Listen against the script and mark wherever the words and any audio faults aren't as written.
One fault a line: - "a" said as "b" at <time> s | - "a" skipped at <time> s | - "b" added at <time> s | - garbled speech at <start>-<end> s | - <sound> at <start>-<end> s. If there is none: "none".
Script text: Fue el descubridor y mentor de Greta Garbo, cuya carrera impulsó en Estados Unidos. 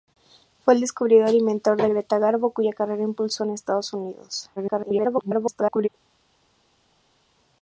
- garbled speech at 4.6-5.9 s